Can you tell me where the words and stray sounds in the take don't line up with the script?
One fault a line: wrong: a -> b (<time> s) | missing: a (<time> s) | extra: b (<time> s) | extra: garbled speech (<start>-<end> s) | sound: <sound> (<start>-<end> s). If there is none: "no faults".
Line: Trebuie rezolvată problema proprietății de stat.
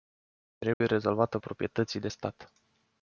sound: dropout (0.7-0.8 s)
missing: problema (1.4 s)